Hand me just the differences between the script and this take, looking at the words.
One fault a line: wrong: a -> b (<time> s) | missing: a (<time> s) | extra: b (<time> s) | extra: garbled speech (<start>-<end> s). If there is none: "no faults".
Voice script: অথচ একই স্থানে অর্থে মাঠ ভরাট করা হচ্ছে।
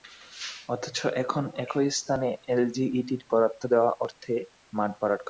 extra: এখন (1.1 s)
extra: এলজিইডির বরাদ্দ দেওয়া (2.5 s)